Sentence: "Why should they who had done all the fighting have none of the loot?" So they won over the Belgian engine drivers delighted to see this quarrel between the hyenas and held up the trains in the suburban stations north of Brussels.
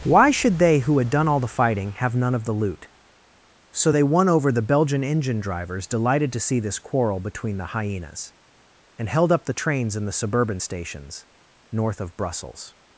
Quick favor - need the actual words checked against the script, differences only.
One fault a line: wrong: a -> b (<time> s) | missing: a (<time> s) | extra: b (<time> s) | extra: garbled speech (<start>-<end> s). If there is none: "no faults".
no faults